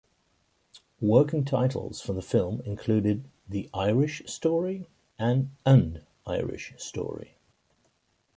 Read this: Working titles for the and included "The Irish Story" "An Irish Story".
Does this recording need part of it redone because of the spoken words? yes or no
yes